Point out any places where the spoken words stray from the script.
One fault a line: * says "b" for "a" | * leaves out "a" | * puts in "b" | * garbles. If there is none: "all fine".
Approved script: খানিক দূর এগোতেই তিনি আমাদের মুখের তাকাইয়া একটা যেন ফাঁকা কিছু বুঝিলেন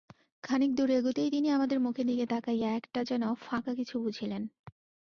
* puts in "দিকে"